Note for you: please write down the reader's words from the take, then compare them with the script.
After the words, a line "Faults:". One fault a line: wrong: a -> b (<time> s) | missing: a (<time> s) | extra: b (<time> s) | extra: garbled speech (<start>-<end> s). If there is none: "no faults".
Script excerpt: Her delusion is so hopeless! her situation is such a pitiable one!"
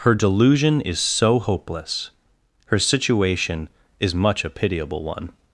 Her delusion is so hopeless! her situation is much a pitiable one!"
Faults:
wrong: such -> much (4.1 s)